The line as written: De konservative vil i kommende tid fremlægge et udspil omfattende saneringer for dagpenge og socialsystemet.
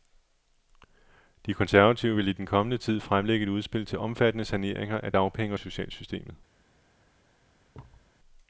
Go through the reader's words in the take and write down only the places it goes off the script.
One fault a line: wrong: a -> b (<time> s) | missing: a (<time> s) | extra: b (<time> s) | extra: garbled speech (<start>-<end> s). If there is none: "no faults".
extra: den (2.3 s)
extra: til (3.9 s)
wrong: for -> af (5.0 s)